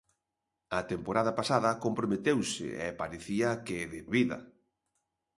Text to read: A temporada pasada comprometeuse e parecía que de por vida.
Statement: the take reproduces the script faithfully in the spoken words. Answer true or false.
false